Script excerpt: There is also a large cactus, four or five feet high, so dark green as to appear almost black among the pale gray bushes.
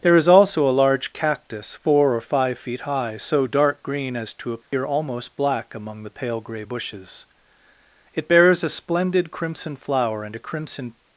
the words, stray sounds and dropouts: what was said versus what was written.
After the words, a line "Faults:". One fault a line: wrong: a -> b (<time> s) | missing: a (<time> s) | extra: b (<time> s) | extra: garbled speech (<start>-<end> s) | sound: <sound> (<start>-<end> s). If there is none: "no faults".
There is also a large cactus, four or five feet high, so dark green as to appear almost black among the pale gray bushes. It bears a splendid crimson flower, and a crimson
Faults:
sound: dropout (4.6-4.7 s)
extra: It bears a splendid crimson flower and a crimson (8.1 s)